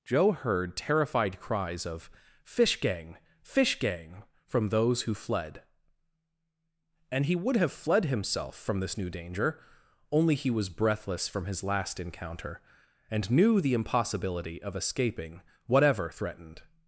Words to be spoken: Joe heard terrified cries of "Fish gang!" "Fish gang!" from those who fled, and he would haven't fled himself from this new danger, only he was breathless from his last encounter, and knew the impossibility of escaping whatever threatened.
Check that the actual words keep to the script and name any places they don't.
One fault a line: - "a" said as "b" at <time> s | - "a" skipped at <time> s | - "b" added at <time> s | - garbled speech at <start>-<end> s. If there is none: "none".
- "haven't" said as "have" at 7.5 s